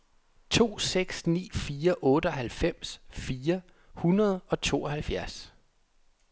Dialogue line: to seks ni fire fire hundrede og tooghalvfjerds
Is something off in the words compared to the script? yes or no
yes